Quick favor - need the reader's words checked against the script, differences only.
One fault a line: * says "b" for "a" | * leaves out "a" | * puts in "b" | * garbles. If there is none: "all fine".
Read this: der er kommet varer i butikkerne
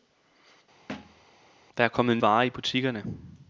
all fine